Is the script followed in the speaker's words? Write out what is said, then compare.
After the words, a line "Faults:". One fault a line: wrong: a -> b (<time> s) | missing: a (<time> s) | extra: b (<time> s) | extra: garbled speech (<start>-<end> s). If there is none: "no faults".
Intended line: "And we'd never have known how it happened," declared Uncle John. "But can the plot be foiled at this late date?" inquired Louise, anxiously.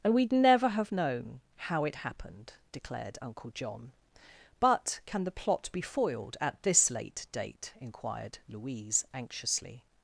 "And we'd never have known how it happened," declared Uncle John. "But can the plot be foiled at this late date?" inquired Louise, anxiously.
Faults:
no faults